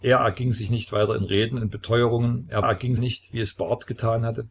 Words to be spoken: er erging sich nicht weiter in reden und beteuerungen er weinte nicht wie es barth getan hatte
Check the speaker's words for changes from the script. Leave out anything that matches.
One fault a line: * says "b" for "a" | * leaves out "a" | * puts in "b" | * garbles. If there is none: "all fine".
* says "erging" for "weinte"